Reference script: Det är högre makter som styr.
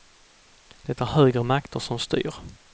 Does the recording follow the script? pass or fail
pass